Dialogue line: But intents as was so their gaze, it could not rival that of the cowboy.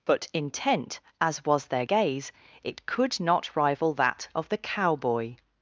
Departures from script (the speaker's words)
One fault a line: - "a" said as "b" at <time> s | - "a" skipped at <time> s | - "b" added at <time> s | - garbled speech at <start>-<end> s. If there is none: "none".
- "intents" said as "intent" at 0.3 s
- "so" skipped at 1.7 s